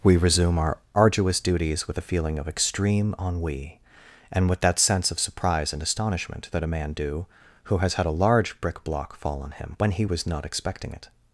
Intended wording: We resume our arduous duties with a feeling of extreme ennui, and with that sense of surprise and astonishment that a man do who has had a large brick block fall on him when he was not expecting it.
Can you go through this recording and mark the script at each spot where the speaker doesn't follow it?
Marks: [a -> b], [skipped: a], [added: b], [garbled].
We resume our arduous duties with a feeling of extreme ennui, and with that sense of surprise and astonishment that a man do who has had a large brick block fall on him when he was not expecting it.